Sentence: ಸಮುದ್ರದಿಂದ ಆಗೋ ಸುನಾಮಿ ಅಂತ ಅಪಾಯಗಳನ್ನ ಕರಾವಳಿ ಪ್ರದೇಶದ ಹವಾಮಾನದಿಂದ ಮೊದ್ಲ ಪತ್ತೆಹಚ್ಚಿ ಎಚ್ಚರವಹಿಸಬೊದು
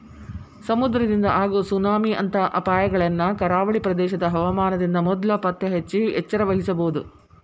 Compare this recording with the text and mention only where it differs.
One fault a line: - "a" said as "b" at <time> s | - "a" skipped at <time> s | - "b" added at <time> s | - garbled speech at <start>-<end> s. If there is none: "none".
none